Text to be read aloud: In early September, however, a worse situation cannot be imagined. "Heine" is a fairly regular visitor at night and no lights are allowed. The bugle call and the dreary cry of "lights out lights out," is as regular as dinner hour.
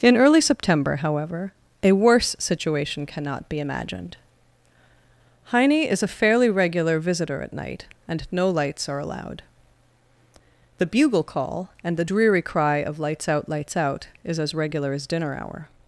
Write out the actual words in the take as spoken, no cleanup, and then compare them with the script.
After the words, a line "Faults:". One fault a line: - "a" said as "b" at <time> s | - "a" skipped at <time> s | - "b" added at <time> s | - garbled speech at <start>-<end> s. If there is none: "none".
In early September, however, a worse situation cannot be imagined. "Heine" is a fairly regular visitor at night and no lights are allowed. The bugle call and the dreary cry of "lights out lights out," is as regular as dinner hour.
Faults:
none